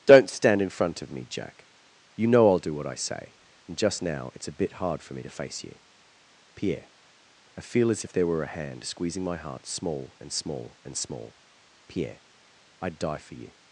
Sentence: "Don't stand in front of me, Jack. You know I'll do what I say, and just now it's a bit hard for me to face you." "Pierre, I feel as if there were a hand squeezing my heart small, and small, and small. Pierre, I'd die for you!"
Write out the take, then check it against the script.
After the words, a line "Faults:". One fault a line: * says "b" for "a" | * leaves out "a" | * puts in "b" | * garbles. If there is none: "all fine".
"Don't stand in front of me, Jack. You know I'll do what I say, and just now it's a bit hard for me to face you." "Pierre, I feel as if there were a hand squeezing my heart small, and small, and small. Pierre, I'd die for you!"
Faults:
all fine